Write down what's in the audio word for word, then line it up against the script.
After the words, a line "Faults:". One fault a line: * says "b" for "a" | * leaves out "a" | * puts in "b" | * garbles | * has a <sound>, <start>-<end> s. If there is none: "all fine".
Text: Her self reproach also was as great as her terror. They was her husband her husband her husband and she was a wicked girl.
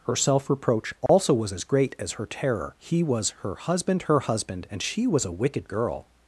Her self reproach also was as great as her terror. He was her husband her husband and she was a wicked girl.
Faults:
* has a dropout, 1.1-1.1 s
* says "He" for "They"
* leaves out "her husband"